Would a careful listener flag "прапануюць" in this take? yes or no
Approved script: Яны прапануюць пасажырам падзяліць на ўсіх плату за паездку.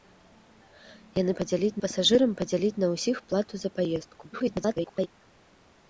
yes